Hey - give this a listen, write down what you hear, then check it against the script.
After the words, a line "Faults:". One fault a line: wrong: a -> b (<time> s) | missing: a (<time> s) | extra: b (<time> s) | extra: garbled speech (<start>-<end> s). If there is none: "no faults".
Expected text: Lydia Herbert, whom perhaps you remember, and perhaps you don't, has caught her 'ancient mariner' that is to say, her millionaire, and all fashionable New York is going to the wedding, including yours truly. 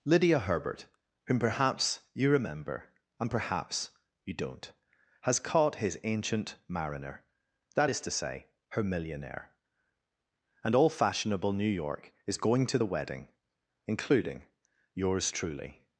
Lydia Herbert, whom perhaps you remember, and perhaps you don't, has caught his 'ancient mariner' that is to say, her millionaire, and all fashionable New York is going to the wedding, including yours truly.
Faults:
wrong: her -> his (5.8 s)